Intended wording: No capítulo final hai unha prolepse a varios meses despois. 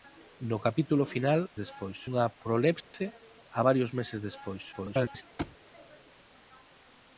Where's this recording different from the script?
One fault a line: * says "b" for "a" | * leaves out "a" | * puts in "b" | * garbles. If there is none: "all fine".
* says "despois" for "hai"
* garbles